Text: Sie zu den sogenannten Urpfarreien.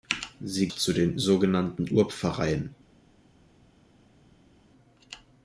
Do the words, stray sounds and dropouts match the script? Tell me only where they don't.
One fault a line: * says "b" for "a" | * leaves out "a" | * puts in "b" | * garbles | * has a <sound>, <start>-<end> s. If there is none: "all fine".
all fine